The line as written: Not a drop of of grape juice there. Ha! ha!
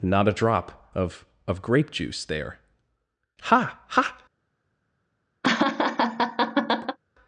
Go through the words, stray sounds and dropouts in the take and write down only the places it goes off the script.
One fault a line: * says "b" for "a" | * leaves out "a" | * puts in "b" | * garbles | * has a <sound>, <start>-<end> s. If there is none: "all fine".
* has a laugh, 5.4-7.0 s